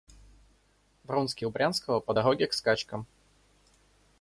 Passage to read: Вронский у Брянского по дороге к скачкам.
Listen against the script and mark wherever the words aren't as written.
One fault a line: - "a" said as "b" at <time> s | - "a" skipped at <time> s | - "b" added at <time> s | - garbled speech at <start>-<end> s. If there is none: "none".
none